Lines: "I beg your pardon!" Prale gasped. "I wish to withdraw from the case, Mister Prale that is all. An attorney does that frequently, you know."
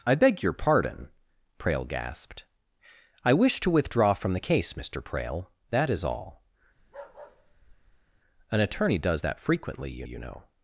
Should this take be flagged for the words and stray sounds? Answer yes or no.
yes